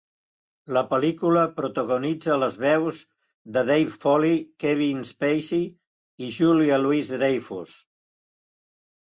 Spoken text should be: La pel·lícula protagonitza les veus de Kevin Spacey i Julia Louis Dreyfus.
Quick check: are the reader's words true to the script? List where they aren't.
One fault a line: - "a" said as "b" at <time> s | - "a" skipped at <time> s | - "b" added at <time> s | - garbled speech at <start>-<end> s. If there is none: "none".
- "Dave Foley" added at 3.7 s